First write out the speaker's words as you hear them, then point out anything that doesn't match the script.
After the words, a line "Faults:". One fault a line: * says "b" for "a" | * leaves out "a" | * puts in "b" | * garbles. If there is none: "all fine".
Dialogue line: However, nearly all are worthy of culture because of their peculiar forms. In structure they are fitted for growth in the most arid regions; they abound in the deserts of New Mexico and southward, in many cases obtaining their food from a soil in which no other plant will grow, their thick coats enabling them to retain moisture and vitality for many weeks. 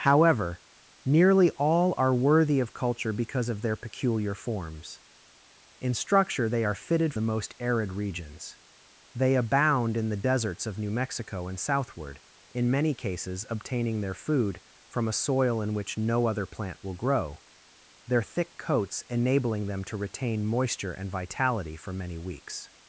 However, nearly all are worthy of culture because of their peculiar forms. In structure they are fitted the most arid regions; they abound in the deserts of New Mexico and southward, in many cases obtaining their food from a soil in which no other plant will grow, their thick coats enabling them to retain moisture and vitality for many weeks.
Faults:
* leaves out "for growth in"